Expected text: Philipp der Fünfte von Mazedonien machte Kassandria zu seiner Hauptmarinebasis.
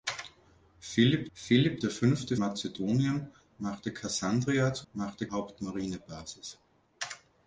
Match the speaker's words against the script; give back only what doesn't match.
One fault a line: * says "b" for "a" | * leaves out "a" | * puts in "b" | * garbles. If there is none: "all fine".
* puts in "philipp"
* leaves out "von"
* says "machte" for "seiner"